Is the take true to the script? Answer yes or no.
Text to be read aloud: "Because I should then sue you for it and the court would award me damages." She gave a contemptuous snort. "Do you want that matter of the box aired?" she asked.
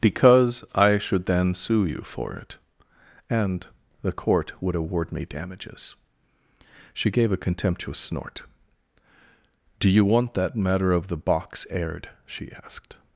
yes